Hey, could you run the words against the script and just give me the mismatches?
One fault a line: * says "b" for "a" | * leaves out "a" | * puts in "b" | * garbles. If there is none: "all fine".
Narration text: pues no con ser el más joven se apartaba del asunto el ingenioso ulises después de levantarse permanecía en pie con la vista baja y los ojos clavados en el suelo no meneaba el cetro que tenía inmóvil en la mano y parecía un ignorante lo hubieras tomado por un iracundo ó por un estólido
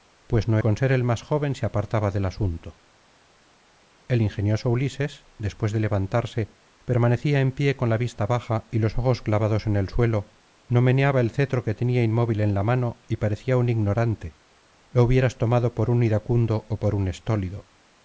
all fine